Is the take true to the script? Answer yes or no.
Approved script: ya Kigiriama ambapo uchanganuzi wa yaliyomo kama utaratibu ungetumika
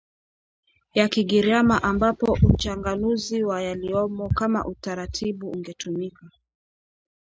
yes